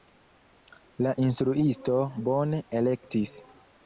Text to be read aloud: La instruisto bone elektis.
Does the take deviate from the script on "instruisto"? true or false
false